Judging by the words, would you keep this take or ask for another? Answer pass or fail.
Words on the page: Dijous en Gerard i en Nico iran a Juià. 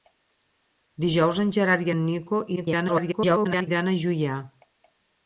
fail